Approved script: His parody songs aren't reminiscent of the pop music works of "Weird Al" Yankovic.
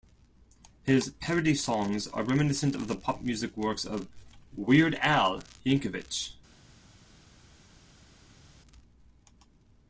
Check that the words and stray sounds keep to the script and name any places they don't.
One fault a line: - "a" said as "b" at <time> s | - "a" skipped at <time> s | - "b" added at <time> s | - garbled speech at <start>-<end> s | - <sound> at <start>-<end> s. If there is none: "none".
- "aren't" said as "are" at 2.1 s